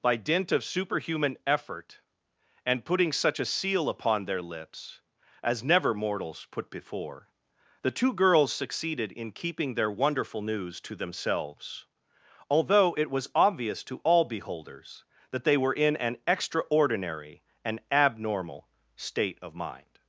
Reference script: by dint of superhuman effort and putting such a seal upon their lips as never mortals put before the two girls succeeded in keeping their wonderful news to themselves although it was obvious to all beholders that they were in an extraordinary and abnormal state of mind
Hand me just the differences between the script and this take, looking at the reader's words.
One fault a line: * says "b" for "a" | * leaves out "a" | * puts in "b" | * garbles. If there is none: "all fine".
all fine